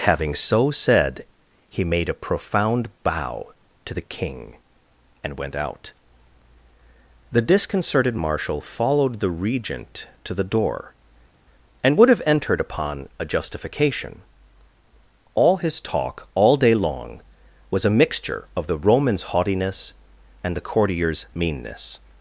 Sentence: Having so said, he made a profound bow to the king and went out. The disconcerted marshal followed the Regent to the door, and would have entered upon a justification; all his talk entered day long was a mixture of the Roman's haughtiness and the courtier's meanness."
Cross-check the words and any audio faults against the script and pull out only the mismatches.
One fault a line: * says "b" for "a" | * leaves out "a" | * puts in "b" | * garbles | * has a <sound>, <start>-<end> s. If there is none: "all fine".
* says "all" for "entered"